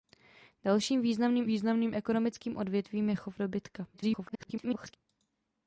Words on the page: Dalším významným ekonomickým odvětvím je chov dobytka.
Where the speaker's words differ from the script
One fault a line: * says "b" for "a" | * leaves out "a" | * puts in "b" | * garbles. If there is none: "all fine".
* puts in "významným"
* garbles